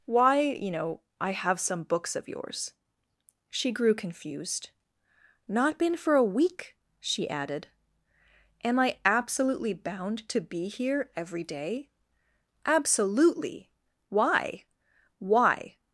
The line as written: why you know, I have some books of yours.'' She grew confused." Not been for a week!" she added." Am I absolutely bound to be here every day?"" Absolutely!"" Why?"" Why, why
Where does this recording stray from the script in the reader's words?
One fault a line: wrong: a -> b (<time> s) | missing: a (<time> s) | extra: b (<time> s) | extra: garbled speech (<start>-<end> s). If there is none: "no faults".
missing: why (15.8 s)